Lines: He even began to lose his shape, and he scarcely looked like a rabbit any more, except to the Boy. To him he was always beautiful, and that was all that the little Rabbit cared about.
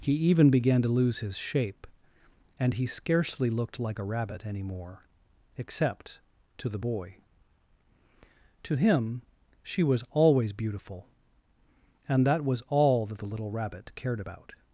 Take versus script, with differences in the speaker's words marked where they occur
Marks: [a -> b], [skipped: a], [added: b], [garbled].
He even began to lose his shape, and he scarcely looked like a rabbit any more, except to the Boy. To him [he -> she] was always beautiful, and that was all that the little Rabbit cared about.